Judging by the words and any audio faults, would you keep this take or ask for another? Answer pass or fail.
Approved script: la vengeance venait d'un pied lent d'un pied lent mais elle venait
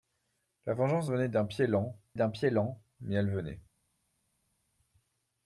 pass